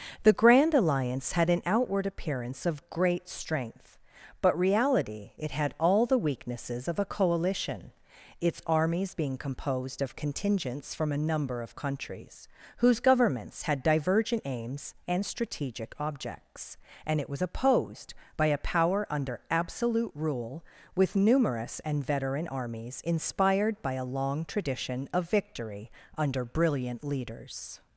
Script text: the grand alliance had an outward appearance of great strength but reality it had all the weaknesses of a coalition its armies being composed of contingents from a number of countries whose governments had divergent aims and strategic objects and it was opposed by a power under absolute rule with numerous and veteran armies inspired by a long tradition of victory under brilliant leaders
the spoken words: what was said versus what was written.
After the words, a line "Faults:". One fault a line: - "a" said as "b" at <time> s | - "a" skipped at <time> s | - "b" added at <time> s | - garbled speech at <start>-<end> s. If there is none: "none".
the grand alliance had an outward appearance of great strength but reality it had all the weaknesses of a coalition its armies being composed of contingents from a number of countries whose governments had divergent aims and strategic objects and it was opposed by a power under absolute rule with numerous and veteran armies inspired by a long tradition of victory under brilliant leaders
Faults:
none